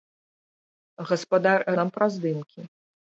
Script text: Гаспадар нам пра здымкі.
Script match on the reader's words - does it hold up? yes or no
yes